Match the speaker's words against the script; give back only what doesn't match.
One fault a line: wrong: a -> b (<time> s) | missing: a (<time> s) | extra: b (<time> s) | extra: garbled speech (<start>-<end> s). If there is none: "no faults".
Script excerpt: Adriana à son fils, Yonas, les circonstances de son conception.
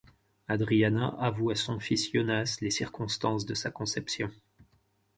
extra: avoue (1.2 s)
wrong: son -> sa (3.5 s)